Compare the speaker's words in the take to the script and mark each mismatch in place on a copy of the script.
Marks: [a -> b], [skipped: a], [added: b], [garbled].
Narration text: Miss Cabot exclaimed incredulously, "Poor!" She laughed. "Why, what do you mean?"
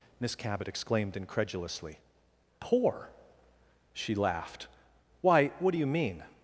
Miss Cabot exclaimed incredulously, "Poor!" She laughed. "Why, what do you mean?"